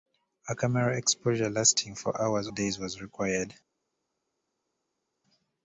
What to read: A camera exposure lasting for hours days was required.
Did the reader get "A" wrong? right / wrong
right